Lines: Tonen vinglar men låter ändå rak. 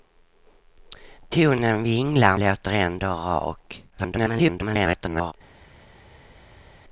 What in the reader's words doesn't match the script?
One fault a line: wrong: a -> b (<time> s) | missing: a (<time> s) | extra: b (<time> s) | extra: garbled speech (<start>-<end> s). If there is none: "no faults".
missing: men (2.4 s)
extra: garbled speech (3.9-5.3 s)